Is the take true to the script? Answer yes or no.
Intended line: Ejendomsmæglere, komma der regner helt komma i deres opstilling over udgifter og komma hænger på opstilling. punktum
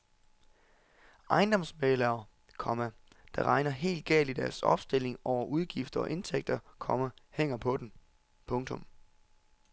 no